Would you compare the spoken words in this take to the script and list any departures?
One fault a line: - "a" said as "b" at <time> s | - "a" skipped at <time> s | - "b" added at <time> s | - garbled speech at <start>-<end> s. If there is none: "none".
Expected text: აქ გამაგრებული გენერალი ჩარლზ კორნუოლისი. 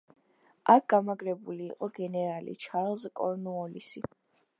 - "იყო" added at 1.7 s